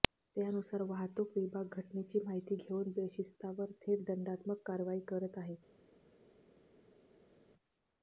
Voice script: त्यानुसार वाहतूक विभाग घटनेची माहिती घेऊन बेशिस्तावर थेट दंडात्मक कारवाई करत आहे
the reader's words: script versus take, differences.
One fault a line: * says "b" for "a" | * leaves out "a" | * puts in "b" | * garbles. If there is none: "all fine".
all fine